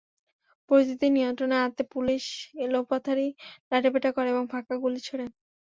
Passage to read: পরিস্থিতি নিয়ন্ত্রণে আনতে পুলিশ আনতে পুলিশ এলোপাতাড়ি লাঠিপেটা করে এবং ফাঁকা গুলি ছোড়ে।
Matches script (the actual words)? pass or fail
fail